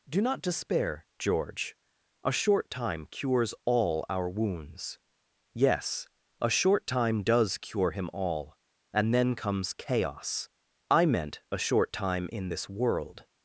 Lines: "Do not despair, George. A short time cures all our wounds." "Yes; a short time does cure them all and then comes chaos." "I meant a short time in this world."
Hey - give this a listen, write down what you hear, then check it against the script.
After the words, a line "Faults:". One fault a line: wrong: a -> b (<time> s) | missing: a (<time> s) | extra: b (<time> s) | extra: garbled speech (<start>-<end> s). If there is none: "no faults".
"Do not despair, George. A short time cures all our wounds." "Yes; a short time does cure him all and then comes chaos." "I meant a short time in this world."
Faults:
wrong: them -> him (7.9 s)